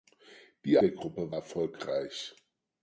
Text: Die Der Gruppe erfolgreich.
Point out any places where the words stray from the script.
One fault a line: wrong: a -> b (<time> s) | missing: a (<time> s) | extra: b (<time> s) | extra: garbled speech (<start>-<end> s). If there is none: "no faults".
no faults